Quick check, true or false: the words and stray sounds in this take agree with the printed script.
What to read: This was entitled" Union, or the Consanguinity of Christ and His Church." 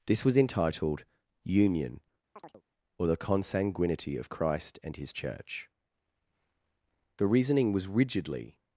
false